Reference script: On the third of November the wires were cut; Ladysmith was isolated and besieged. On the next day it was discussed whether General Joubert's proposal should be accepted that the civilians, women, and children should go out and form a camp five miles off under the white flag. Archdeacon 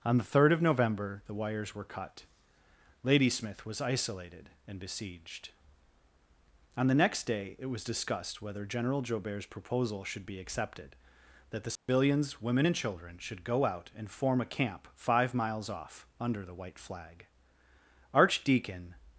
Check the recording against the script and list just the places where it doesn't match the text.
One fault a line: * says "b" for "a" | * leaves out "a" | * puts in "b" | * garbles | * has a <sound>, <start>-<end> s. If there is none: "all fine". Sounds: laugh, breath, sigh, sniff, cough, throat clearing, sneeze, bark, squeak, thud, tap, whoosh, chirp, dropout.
* has a dropout, 11.8-11.9 s